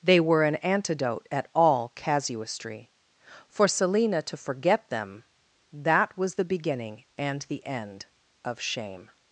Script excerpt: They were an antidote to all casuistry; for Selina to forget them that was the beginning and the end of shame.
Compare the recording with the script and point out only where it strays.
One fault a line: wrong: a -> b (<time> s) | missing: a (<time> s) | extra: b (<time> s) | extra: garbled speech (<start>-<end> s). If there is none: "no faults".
wrong: to -> at (1.3 s)